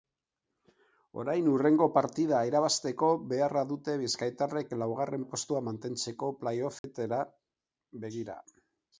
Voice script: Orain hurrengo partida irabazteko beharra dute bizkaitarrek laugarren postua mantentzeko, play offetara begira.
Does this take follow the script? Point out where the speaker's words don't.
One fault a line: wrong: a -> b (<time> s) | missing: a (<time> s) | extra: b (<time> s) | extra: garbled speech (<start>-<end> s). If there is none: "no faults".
no faults